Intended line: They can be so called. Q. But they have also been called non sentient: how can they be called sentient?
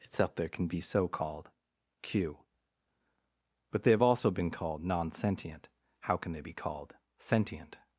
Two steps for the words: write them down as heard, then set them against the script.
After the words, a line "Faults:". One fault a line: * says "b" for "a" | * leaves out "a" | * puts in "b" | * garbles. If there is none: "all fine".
Itself there can be so called. Q. But they have also been called non sentient: how can they be called sentient?
Faults:
* says "Itself there" for "They"